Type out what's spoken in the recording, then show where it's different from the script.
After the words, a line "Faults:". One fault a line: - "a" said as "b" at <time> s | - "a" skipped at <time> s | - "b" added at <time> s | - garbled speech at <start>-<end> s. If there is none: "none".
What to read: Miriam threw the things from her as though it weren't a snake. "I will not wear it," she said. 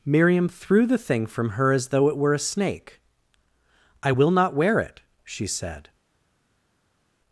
Miriam threw the thing from her as though it were a snake. "I will not wear it," she said.
Faults:
- "things" said as "thing" at 1.0 s
- "weren't" said as "were" at 2.2 s